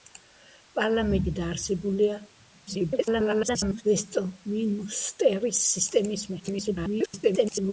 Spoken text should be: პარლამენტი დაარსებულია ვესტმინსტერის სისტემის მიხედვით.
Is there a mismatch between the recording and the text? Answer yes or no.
yes